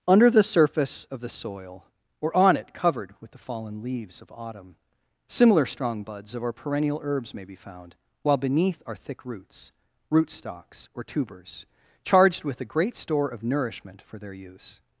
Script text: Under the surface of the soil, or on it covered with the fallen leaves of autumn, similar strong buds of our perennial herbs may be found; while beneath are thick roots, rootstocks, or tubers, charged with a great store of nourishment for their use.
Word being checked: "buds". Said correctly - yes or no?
yes